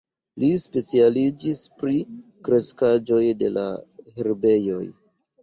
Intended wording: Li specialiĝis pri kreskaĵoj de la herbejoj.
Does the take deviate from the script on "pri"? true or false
false